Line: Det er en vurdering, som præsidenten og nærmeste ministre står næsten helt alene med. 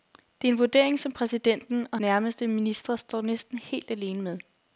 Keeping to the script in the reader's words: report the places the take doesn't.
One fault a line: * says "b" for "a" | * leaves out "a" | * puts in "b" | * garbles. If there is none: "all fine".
all fine